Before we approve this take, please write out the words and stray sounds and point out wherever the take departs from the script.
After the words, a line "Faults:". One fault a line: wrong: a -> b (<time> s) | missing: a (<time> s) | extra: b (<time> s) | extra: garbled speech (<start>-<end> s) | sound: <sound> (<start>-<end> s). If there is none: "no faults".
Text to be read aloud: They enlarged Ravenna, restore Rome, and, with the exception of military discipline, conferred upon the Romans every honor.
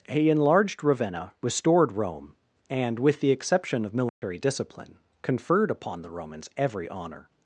He enlarged Ravenna, restored Rome, and, with the exception of military discipline, conferred upon the Romans every honor.
Faults:
wrong: They -> He (0.1 s)
wrong: restore -> restored (1.4 s)
sound: dropout (4.1-4.2 s)